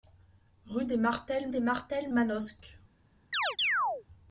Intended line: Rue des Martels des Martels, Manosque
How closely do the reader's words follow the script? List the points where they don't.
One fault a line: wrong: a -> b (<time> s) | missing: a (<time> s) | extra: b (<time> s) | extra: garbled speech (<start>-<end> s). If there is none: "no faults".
no faults